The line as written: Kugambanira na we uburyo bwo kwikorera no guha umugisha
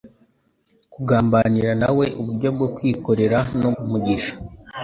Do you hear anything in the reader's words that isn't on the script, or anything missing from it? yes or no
yes